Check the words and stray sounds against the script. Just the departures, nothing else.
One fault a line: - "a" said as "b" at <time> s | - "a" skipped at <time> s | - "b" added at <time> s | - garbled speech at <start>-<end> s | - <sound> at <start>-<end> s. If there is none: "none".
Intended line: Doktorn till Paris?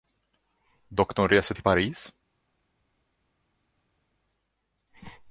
- "reser" added at 1.3 s